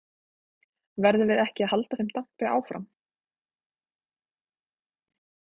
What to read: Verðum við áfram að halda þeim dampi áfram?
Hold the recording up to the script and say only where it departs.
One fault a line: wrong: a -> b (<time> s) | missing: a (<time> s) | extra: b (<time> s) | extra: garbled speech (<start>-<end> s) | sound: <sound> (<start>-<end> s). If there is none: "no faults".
wrong: áfram -> ekki (1.4 s)